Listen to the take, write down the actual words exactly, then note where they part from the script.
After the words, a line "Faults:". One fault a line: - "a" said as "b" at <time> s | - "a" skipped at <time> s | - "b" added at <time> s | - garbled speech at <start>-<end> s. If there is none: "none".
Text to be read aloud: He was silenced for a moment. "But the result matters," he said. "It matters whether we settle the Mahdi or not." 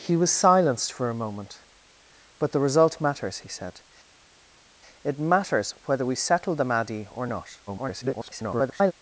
He was silenced for a moment. "But the result matters," he said. "It matters whether we settle the Mahdi or not." [garbled]
Faults:
- garbled speech at 7.7-8.9 s